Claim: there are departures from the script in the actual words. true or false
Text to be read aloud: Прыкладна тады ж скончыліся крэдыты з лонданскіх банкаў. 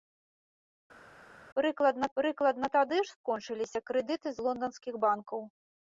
true